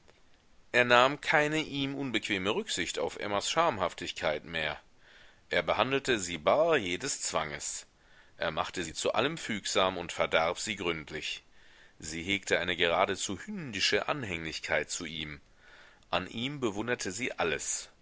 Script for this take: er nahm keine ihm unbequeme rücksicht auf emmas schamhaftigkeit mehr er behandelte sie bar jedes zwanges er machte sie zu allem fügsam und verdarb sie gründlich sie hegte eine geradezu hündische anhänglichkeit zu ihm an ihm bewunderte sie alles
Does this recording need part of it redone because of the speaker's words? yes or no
no